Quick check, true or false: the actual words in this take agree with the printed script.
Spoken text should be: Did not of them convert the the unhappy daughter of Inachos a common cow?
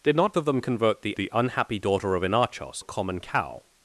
true